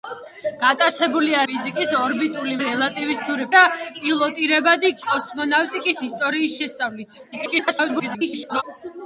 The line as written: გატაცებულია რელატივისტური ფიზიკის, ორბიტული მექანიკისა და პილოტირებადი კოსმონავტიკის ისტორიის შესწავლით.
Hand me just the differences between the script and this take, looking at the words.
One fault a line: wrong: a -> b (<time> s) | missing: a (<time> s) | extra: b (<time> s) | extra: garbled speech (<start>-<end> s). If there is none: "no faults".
missing: რელატივისტური (1.4 s)
wrong: მექანიკისა -> რელატივისტური (2.6 s)
extra: garbled speech (7.3-8.6 s)